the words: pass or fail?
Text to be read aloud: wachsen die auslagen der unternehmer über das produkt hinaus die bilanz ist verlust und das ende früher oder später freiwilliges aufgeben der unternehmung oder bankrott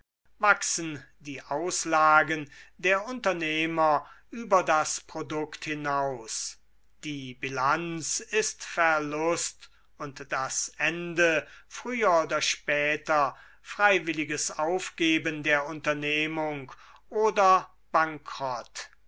pass